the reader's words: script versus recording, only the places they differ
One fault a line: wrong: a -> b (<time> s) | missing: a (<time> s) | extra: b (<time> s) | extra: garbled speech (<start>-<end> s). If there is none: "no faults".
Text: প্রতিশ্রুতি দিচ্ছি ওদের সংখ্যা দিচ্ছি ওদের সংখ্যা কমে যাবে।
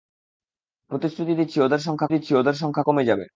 no faults